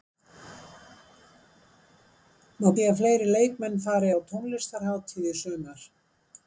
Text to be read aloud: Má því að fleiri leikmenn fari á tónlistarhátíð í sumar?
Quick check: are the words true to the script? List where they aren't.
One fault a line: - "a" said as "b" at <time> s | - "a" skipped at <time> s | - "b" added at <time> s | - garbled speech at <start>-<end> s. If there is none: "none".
none